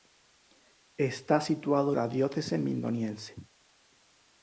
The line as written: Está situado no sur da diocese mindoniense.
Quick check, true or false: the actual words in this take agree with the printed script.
false